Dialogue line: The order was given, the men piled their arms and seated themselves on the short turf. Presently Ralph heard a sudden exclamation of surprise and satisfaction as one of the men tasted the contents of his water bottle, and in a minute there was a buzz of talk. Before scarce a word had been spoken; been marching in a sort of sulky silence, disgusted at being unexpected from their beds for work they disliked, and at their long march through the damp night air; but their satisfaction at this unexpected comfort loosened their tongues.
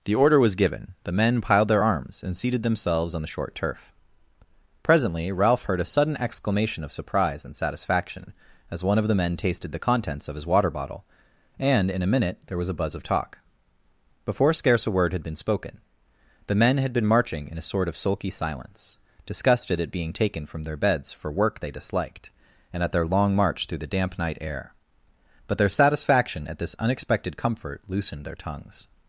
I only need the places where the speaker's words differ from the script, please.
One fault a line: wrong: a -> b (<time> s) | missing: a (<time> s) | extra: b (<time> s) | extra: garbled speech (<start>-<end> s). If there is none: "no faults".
extra: the men had (16.5 s)
wrong: unexpected -> taken (20.1 s)